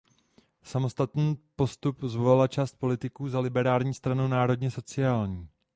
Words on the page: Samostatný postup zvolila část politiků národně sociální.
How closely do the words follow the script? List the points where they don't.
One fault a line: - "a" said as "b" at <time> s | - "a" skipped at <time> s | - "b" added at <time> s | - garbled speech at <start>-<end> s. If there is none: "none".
- "za Liberální stranu" added at 3.3 s